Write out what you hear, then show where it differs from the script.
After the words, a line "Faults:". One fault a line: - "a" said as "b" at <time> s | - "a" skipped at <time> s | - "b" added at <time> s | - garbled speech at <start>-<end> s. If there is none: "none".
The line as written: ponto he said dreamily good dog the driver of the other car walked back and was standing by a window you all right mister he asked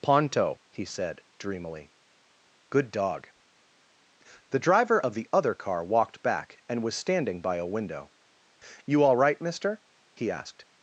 ponto he said dreamily good dog the driver of the other car walked back and was standing by a window you all right mister he asked
Faults:
none